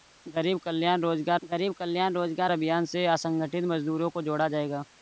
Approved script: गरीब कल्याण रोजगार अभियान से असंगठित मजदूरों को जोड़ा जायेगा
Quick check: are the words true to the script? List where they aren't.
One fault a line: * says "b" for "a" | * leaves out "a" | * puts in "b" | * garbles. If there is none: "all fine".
* puts in "गरीब कल्याण रोजगार"